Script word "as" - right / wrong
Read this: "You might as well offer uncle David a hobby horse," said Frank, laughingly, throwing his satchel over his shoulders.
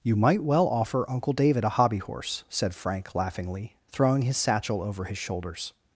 wrong